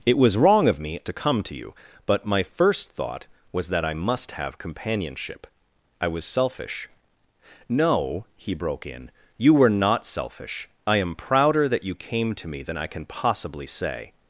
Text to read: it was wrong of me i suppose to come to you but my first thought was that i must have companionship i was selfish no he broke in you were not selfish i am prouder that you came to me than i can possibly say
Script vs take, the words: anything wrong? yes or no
yes